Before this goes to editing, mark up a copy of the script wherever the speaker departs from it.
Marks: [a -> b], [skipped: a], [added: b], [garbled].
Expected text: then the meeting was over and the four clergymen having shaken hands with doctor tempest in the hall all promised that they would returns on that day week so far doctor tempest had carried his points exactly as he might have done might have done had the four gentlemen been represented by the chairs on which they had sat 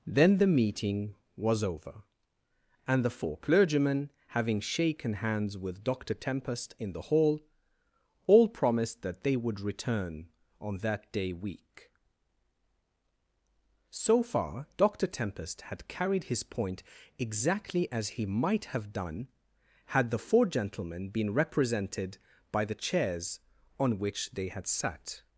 then the meeting was over and the four clergymen having shaken hands with doctor tempest in the hall all promised that they would [returns -> return] on that day week so far doctor tempest had carried his [points -> point] exactly as he might have done [skipped: might have done] had the four gentlemen been represented by the chairs on which they had sat